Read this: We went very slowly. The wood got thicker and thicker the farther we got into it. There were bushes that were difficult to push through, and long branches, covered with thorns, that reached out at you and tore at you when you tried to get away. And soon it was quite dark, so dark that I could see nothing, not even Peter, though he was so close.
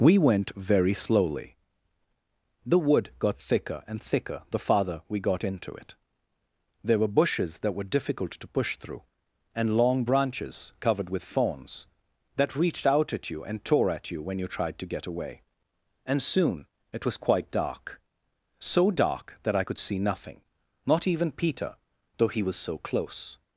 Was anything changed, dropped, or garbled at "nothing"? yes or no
no